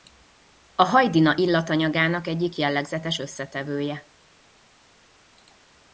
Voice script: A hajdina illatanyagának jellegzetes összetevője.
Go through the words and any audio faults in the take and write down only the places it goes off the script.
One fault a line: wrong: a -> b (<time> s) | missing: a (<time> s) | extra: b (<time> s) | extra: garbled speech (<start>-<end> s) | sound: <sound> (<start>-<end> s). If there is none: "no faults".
extra: egyik (2.3 s)